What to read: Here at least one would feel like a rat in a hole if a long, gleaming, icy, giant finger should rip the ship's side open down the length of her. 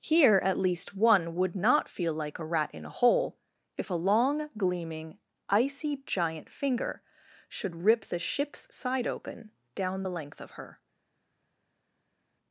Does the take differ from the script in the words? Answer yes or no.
yes